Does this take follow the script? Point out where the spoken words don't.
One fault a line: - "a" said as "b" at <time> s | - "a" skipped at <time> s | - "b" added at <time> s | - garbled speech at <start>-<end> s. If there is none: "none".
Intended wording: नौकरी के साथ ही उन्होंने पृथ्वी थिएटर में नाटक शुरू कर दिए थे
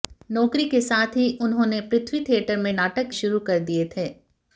none